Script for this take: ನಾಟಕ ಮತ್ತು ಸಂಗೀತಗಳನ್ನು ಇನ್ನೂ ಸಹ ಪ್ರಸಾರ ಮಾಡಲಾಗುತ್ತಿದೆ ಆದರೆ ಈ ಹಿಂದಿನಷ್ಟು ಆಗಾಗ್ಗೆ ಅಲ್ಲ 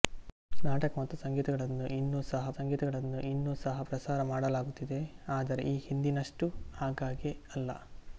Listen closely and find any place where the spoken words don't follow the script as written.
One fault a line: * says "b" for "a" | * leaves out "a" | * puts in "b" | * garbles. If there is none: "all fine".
* puts in "ಸಂಗೀತಗಳನ್ನು ಇನ್ನೂ ಸಹ"